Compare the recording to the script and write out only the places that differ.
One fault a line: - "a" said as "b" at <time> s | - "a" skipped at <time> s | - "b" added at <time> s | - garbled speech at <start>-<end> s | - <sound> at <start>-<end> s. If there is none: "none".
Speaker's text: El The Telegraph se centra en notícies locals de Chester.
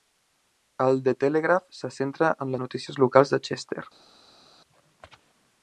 none